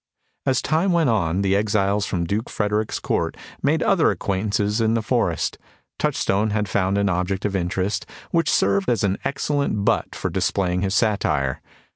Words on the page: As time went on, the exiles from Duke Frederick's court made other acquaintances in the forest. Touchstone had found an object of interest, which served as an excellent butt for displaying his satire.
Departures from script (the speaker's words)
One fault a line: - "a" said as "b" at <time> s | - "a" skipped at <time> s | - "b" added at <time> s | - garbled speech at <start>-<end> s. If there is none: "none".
none